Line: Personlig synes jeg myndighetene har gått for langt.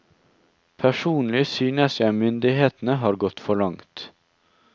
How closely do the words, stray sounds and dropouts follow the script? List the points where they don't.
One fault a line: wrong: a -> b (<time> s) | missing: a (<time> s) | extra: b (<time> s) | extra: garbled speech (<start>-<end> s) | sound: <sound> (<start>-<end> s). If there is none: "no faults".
no faults